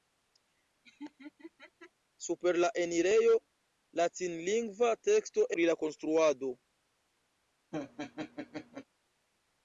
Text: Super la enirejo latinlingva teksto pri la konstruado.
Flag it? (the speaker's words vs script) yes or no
no